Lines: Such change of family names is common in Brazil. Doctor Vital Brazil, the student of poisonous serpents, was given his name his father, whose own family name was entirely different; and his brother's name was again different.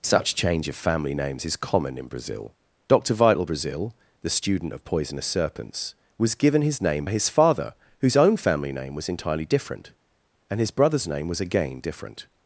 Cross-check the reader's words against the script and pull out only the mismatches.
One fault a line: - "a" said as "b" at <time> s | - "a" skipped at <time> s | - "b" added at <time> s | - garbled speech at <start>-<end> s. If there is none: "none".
none